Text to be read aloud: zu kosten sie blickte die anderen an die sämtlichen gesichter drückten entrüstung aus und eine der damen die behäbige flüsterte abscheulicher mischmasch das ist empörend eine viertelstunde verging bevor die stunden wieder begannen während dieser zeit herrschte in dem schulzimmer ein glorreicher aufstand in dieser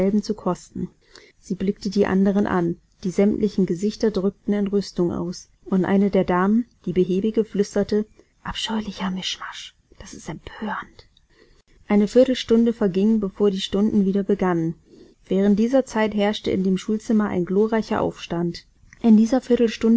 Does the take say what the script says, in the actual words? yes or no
yes